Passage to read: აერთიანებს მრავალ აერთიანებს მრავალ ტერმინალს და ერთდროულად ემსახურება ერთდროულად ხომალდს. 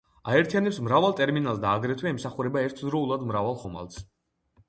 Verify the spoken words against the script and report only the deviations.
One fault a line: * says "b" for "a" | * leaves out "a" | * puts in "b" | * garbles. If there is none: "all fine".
* leaves out "აერთიანებს მრავალ"
* says "აგრეთვე" for "ერთდროულად"
* puts in "მრავალ"